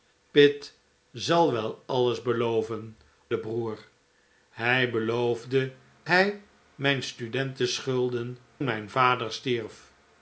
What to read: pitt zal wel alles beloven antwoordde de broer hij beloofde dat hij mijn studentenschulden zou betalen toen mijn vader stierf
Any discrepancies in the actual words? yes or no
yes